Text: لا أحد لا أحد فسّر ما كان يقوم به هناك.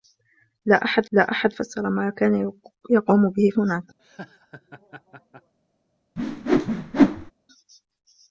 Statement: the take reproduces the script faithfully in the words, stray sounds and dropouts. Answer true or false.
false